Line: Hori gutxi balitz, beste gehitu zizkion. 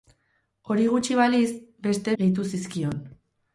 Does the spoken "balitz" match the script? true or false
true